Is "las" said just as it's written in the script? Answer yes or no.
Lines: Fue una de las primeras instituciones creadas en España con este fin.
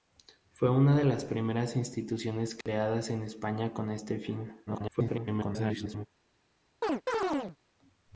yes